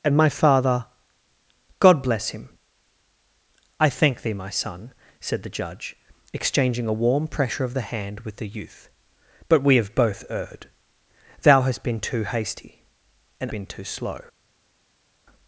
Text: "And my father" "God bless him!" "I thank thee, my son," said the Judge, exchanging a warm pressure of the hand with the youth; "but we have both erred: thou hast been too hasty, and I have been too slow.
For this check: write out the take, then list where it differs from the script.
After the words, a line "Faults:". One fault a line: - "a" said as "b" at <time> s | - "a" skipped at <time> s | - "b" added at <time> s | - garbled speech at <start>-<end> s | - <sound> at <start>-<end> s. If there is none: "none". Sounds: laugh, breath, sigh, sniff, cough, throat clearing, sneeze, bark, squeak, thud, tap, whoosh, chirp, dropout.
"And my father" "God bless him!" "I thank thee, my son," said the Judge, exchanging a warm pressure of the hand with the youth; "but we have both erred: thou hast been too hasty, and been too slow.
Faults:
- "I have" skipped at 13.5 s